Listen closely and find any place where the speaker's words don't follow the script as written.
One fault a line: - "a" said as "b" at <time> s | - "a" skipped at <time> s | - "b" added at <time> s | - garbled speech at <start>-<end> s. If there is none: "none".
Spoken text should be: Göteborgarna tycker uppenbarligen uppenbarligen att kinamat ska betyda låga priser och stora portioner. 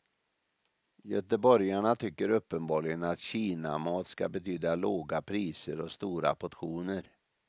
- "uppenbarligen" skipped at 3.0 s